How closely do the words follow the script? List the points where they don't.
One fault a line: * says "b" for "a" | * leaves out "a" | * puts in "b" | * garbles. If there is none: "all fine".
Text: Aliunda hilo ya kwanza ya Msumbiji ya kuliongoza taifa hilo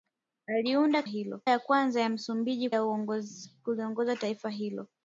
all fine